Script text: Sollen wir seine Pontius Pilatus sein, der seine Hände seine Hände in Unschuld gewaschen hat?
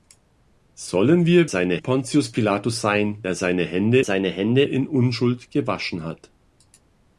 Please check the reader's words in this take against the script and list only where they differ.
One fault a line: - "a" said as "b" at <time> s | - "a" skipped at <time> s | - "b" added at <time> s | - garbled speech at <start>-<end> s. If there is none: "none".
none